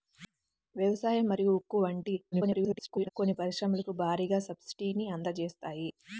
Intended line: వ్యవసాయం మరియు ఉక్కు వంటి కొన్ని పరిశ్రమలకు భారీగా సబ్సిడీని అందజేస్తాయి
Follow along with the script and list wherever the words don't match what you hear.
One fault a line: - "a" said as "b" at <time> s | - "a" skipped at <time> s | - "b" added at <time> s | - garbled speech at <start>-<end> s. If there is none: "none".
- garbled speech at 2.3-3.1 s